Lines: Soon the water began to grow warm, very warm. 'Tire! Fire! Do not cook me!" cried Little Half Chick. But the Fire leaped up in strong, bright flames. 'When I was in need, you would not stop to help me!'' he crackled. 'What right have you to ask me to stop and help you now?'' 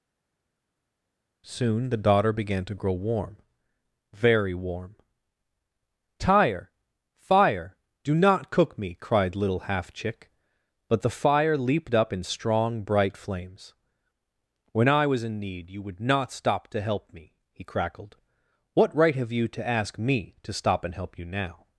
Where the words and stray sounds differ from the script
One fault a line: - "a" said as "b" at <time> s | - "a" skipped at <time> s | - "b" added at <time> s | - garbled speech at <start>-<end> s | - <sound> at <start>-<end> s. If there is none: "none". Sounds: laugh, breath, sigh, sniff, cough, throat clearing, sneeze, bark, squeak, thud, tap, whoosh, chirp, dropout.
- "water" said as "daughter" at 2.0 s